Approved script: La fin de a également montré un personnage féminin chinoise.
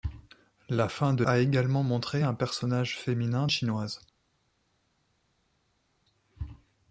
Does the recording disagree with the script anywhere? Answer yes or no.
no